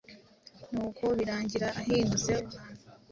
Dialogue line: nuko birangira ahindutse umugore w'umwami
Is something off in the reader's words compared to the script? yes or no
yes